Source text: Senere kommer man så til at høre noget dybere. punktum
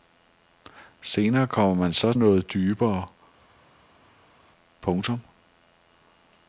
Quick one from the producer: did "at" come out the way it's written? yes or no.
no